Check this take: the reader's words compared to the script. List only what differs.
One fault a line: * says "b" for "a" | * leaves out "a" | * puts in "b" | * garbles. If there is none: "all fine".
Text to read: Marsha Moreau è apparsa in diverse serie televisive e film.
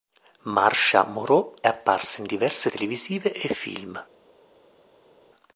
* leaves out "è"
* leaves out "serie"